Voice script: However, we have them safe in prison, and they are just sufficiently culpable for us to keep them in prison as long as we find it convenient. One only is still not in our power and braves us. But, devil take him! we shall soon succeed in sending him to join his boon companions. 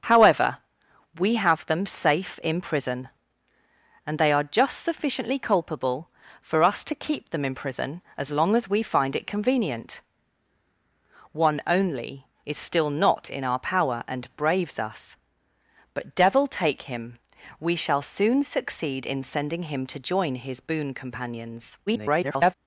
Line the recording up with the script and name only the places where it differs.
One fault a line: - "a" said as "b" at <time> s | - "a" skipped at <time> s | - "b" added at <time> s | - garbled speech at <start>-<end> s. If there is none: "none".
- garbled speech at 21.9-22.5 s